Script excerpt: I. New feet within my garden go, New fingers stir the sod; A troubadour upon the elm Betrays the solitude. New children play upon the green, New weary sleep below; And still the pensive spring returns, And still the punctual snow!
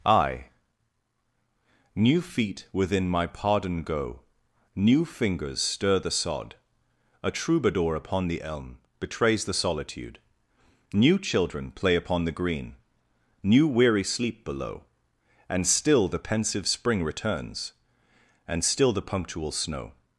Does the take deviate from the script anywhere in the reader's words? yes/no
yes